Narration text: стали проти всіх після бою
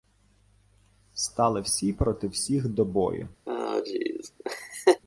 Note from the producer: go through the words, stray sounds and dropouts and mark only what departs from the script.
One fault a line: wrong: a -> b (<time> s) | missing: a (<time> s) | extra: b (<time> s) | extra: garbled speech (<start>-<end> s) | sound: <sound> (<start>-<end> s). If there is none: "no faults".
extra: всі (1.6 s)
wrong: після -> до (2.7 s)
sound: laugh (3.5-5.0 s)